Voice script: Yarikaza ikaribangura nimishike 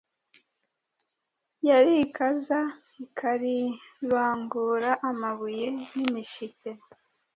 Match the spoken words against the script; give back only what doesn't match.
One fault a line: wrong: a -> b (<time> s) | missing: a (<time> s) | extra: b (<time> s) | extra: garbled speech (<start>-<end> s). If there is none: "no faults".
extra: amabuye (5.1 s)